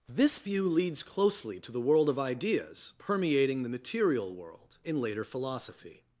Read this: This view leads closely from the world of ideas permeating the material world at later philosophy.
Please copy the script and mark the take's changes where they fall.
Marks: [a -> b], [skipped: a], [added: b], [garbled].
This view leads closely [from -> to] the world of ideas permeating the material world [at -> in] later philosophy.